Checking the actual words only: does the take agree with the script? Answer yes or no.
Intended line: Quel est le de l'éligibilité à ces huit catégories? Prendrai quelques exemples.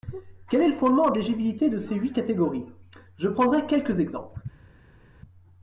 no